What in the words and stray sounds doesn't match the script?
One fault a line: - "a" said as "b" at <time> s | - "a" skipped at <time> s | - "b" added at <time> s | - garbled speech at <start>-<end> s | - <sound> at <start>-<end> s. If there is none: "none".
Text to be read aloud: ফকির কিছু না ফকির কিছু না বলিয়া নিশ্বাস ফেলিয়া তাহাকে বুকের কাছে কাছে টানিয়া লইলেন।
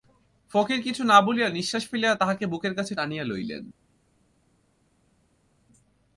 - "ফকির কিছু না" skipped at 1.2 s
- "কাছে" skipped at 2.9 s